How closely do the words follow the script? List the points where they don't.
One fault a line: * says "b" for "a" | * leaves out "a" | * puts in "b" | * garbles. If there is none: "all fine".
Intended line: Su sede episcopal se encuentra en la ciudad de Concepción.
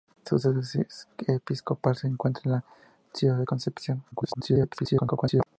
* garbles